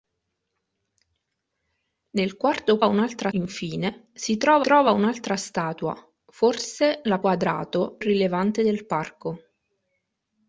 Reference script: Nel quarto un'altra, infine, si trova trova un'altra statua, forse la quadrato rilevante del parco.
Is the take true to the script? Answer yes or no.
yes